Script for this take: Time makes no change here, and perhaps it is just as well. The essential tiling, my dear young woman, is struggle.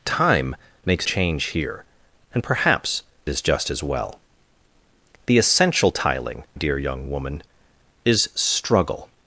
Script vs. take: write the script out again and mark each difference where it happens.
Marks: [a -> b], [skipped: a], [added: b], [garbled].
Time makes [skipped: no] change here, and perhaps [skipped: it] is just as well. The essential tiling, [skipped: my] dear young woman, is struggle.